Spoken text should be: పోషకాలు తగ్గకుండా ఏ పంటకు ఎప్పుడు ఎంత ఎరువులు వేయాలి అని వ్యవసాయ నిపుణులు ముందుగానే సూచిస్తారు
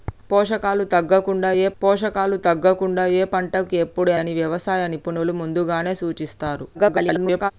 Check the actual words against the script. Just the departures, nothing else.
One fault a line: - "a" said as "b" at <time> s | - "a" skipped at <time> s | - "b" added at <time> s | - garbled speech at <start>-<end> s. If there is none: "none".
- "పంటకు ఎప్పుడు ఎంత ఎరువులు వేయాలి" said as "పోషకాలు తగ్గకుండా ఏ పంటకు ఎప్పుడు" at 1.8 s
- garbled speech at 6.7-7.5 s